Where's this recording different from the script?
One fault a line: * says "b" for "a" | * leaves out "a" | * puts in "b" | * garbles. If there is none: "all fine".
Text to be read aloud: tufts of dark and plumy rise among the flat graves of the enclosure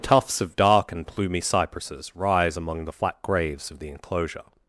* puts in "cypresses"